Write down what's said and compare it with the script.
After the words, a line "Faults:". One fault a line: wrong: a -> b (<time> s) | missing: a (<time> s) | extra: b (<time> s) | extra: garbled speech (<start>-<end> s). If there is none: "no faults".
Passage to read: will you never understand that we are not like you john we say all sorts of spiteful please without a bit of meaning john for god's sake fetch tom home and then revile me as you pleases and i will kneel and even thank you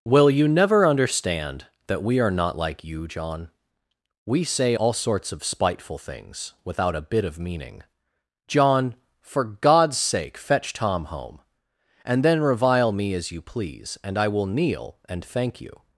will you never understand that we are not like you john we say all sorts of spiteful things without a bit of meaning john for god's sake fetch tom home and then revile me as you please and i will kneel and thank you
Faults:
wrong: please -> things (6.0 s)
wrong: pleases -> please (13.4 s)
missing: even (15.2 s)